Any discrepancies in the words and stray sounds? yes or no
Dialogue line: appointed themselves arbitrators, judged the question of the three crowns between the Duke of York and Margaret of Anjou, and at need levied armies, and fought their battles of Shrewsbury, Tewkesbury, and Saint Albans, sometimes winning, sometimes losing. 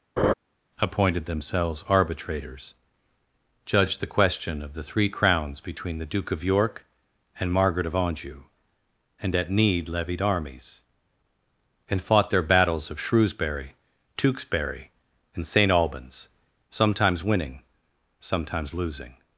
yes